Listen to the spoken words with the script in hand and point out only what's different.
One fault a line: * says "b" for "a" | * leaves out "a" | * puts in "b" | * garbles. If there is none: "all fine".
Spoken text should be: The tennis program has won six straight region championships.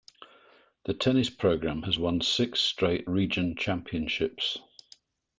all fine